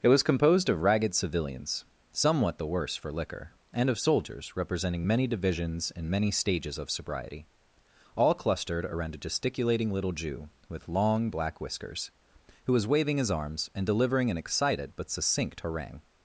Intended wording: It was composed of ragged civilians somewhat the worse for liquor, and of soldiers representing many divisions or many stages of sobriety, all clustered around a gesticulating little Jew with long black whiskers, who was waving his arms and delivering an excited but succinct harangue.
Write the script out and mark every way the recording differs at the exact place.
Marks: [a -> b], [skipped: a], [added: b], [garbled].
It was composed of ragged civilians somewhat the worse for liquor, and of soldiers representing many divisions [or -> and] many stages of sobriety, all clustered around a gesticulating little Jew with long black whiskers, who was waving his arms and delivering an excited but succinct harangue.